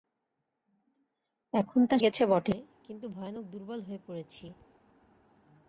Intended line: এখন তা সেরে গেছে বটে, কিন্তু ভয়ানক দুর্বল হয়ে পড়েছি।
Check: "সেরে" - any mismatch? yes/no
yes